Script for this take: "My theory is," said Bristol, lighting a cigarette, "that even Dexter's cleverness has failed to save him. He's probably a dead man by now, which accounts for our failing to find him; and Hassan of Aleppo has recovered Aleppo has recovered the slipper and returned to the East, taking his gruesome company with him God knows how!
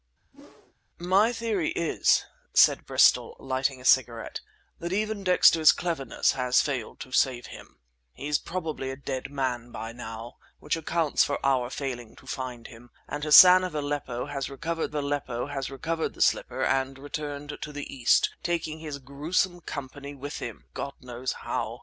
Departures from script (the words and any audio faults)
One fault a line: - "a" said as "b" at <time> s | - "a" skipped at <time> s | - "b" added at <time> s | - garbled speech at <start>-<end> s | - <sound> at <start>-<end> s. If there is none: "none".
- whoosh at 0.3-0.7 s